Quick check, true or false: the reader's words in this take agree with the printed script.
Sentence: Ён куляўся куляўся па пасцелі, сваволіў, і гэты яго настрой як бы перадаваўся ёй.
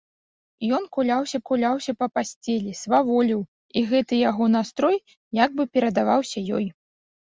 true